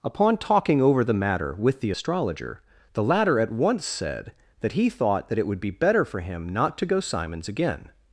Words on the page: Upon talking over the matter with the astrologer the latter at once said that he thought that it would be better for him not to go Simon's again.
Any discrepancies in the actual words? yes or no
no